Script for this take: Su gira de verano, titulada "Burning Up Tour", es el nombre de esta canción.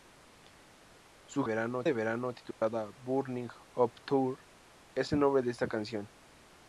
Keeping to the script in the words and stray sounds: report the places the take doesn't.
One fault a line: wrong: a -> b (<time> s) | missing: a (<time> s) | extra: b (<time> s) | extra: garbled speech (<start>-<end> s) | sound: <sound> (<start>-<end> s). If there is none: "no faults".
wrong: gira -> verano (1.4 s)
sound: dropout (2.5-2.6 s)